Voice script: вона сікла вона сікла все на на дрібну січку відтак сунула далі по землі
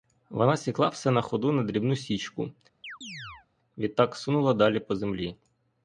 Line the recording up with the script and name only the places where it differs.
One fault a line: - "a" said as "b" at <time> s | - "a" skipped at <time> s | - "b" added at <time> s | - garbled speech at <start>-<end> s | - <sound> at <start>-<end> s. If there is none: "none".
- "вона сікла" skipped at 0.9 s
- "ходу" added at 1.2 s
- chirp at 2.8-3.5 s